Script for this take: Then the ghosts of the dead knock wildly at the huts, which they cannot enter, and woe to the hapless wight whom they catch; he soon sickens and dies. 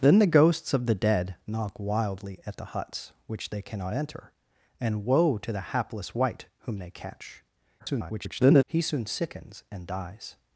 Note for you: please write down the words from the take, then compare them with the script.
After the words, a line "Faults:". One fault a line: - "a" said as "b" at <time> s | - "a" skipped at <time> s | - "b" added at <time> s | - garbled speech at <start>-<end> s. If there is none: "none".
Then the ghosts of the dead knock wildly at the huts, which they cannot enter, and woe to the hapless wight whom they catch; [garbled] he soon sickens and dies.
Faults:
- garbled speech at 7.8-8.6 s